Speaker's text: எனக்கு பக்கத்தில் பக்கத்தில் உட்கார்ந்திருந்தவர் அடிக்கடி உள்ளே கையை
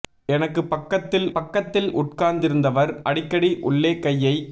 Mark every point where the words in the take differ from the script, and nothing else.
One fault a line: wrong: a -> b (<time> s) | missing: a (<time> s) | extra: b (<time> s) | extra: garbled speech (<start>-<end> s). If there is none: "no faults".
no faults